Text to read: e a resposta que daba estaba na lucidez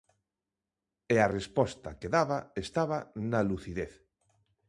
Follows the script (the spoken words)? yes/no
yes